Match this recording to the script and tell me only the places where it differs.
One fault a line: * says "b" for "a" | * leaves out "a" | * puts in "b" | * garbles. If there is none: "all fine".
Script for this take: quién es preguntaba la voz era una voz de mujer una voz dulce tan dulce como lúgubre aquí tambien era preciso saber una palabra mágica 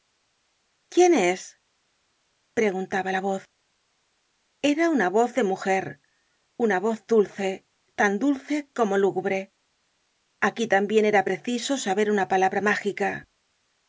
all fine